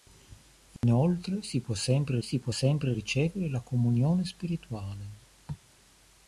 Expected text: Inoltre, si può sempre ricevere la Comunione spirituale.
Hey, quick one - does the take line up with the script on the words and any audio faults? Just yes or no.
no